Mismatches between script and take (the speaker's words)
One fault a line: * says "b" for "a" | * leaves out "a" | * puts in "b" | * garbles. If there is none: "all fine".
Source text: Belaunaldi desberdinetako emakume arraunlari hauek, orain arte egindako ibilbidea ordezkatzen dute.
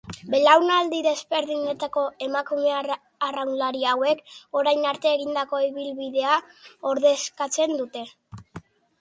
all fine